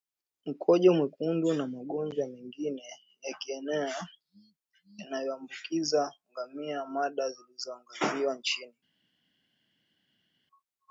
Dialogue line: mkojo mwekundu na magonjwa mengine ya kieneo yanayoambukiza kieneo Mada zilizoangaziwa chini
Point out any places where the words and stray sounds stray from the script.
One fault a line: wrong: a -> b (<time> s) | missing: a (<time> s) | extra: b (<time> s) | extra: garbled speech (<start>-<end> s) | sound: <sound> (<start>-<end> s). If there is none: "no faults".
wrong: kieneo -> ngamia (6.3 s)